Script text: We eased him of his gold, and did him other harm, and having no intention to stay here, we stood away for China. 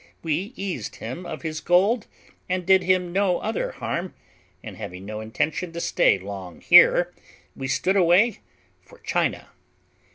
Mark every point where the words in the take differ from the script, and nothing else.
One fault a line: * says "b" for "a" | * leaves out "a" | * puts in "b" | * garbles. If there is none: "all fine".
* puts in "no"
* puts in "long"